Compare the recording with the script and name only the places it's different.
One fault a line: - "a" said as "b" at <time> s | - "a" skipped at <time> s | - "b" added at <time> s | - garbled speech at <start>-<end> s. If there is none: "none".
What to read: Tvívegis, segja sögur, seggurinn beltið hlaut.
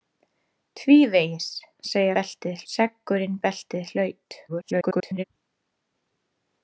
- "sögur" said as "beltið" at 2.2 s
- garbled speech at 4.5-5.2 s